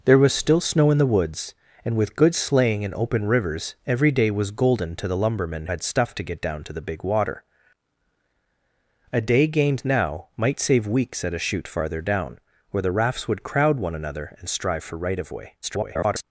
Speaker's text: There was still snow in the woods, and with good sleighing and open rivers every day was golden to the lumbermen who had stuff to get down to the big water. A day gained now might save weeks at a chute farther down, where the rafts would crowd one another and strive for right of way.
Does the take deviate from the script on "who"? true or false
true